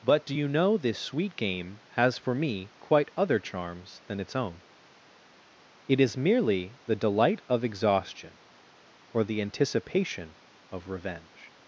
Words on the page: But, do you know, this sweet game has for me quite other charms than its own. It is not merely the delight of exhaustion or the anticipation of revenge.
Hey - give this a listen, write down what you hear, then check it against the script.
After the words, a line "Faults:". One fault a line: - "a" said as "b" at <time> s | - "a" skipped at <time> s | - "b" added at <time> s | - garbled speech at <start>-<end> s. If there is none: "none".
But, do you know, this sweet game has for me quite other charms than its own. It is merely the delight of exhaustion or the anticipation of revenge.
Faults:
- "not" skipped at 6.1 s